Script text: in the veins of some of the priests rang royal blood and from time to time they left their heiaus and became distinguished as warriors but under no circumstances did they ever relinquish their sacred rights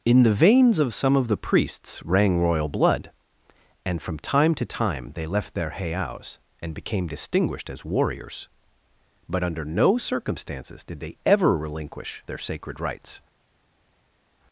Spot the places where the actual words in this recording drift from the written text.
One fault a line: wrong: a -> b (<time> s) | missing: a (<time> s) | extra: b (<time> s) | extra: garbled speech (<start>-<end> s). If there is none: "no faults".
no faults